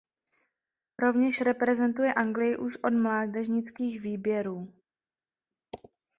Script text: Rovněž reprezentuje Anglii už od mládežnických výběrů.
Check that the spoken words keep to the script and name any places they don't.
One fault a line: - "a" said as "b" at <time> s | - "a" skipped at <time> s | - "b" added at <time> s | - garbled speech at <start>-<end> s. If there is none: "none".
none